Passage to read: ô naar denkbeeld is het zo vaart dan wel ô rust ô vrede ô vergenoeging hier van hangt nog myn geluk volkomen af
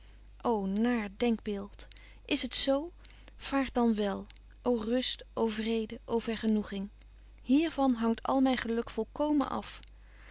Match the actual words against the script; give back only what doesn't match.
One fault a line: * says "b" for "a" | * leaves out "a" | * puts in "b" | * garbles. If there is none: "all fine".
* says "al" for "nog"